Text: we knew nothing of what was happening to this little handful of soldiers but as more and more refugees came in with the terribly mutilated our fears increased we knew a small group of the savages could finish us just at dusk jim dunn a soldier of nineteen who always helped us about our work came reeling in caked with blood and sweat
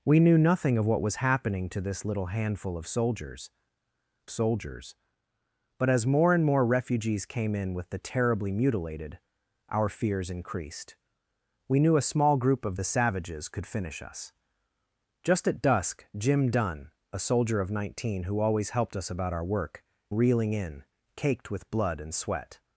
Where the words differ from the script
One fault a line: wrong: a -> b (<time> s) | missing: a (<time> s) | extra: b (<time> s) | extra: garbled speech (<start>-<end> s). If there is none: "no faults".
extra: soldiers (4.3 s)
missing: came (19.8 s)